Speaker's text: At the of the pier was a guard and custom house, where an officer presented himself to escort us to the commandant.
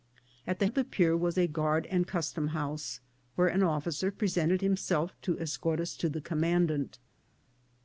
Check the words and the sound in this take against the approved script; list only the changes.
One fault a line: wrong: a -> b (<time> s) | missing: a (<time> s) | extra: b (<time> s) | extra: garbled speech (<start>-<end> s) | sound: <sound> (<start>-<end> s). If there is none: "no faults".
no faults